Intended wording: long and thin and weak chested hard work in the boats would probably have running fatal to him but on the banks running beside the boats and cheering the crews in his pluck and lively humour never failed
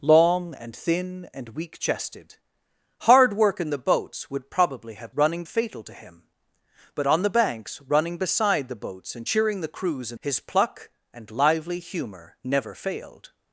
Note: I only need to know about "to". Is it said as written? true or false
true